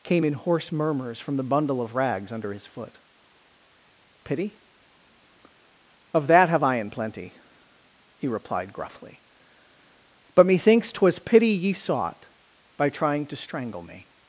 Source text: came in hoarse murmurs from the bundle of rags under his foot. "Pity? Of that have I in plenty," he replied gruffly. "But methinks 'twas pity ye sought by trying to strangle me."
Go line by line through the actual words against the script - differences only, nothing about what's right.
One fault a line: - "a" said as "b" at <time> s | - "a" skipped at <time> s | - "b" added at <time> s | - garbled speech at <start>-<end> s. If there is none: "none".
none